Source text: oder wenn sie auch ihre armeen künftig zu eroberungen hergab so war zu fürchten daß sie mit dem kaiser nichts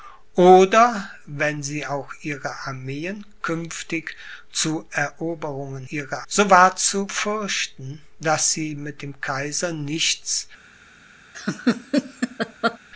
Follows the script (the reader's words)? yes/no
no